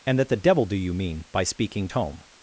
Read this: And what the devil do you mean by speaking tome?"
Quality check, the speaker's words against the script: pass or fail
fail